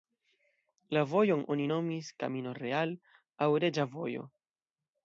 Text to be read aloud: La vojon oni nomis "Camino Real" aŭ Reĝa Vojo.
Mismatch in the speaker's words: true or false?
false